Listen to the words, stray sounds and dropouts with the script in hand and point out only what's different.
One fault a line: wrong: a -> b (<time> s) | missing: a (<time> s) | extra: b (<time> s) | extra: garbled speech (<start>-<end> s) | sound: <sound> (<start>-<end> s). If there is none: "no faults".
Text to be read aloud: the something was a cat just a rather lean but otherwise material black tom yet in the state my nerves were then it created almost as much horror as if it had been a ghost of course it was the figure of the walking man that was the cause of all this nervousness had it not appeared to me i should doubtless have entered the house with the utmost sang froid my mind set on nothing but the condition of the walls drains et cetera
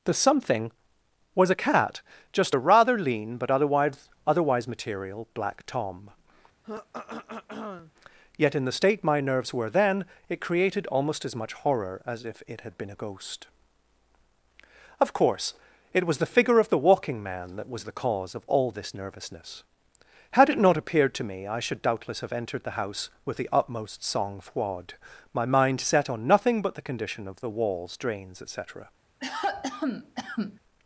extra: otherwise (4.3 s)
sound: throat clearing (6.6-7.9 s)
sound: cough (29.2-30.6 s)